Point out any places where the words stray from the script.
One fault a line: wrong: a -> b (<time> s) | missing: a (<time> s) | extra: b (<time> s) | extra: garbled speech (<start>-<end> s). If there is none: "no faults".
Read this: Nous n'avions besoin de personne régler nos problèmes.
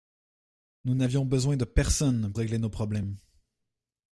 no faults